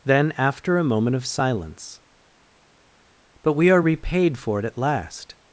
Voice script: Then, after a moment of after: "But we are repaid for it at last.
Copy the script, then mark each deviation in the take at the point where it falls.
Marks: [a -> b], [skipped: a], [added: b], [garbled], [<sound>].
Then, after a moment of [after: -> silence] "But we are repaid for it at last.